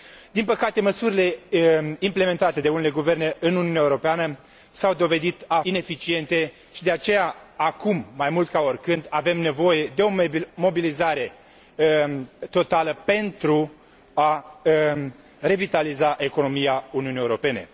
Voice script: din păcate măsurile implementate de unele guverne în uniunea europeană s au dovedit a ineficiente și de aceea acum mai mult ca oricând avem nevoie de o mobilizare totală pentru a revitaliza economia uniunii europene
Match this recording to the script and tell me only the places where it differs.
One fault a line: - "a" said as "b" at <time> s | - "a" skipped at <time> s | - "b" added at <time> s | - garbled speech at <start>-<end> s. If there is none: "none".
none